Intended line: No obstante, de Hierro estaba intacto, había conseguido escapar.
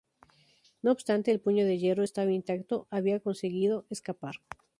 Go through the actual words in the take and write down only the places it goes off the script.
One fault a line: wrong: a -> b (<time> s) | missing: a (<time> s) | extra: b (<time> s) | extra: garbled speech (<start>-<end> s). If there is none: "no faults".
extra: el Puño (1.3 s)